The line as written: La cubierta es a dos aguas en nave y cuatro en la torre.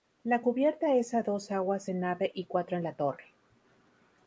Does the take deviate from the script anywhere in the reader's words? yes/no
no